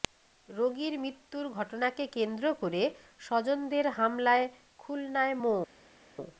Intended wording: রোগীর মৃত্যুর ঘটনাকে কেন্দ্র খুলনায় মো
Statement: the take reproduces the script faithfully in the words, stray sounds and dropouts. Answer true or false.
false